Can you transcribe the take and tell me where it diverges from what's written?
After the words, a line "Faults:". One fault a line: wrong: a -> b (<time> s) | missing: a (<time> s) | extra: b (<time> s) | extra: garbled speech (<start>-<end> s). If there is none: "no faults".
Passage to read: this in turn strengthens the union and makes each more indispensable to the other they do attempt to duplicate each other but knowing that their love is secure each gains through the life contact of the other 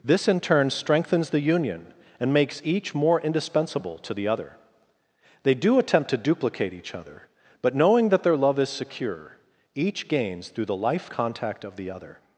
this in turn strengthens the union and makes each more indispensable to the other they do attempt to duplicate each other but knowing that their love is secure each gains through the life contact of the other
Faults:
no faults